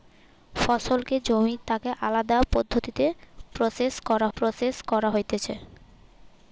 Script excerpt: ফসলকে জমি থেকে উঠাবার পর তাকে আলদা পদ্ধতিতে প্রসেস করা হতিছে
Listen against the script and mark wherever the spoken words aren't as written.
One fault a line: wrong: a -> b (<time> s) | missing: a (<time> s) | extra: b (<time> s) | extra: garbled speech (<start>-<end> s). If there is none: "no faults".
missing: থেকে উঠাবার পর (1.6 s)
extra: প্রসেস করা (4.4 s)